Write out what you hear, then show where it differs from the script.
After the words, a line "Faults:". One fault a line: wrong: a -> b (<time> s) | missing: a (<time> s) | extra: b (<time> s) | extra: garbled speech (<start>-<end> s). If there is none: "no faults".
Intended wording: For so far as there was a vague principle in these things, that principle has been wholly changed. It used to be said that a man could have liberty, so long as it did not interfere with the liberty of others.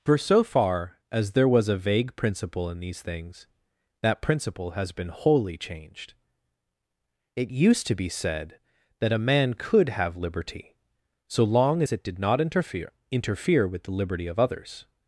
For so far as there was a vague principle in these things, that principle has been wholly changed. It used to be said that a man could have liberty, so long as it did not interfere interfere with the liberty of others.
Faults:
extra: interfere (13.1 s)